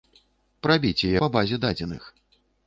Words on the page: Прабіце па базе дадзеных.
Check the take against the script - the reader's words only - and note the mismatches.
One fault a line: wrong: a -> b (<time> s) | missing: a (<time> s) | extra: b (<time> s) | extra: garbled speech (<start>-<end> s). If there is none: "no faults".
no faults